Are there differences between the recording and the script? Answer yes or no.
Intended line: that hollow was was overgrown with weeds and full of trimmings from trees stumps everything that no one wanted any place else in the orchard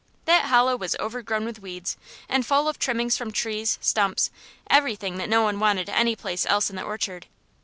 yes